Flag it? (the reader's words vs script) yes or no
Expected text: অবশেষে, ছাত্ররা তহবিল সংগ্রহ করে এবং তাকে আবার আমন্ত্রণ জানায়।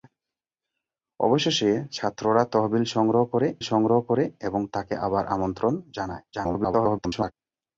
yes